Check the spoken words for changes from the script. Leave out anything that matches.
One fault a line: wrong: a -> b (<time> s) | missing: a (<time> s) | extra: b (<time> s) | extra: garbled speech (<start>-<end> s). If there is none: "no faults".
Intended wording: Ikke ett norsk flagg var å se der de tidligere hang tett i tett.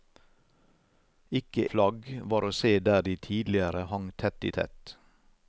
missing: ett norsk (1.6 s)